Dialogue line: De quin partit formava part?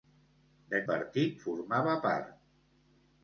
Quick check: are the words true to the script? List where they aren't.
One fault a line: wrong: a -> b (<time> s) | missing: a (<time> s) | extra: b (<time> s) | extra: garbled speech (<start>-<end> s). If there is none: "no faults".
missing: quin (0.8 s)